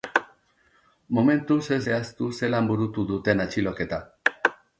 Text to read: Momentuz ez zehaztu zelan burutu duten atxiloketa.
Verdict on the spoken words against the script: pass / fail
pass